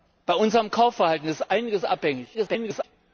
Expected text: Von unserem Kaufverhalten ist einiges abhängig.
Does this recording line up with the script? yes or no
no